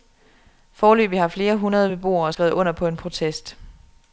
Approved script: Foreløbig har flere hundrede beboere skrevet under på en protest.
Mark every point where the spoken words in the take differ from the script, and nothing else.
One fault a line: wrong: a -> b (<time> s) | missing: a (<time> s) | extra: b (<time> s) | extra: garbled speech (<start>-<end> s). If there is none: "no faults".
no faults